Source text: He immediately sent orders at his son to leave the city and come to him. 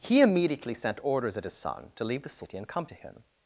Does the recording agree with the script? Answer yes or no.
yes